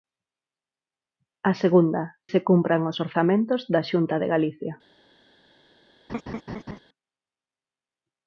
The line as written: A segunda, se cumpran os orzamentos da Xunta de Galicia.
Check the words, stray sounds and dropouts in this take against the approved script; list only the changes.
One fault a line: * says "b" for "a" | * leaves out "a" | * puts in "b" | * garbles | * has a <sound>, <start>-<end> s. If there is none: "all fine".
* has a laugh, 6.1-6.8 s